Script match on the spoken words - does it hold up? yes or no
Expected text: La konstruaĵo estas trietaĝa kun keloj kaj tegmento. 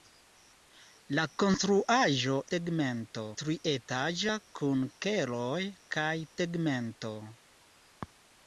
no